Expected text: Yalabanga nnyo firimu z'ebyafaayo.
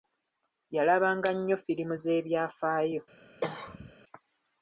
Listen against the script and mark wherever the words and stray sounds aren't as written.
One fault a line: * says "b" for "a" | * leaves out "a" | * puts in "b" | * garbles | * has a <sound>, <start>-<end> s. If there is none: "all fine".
* has a cough, 3.4-3.9 s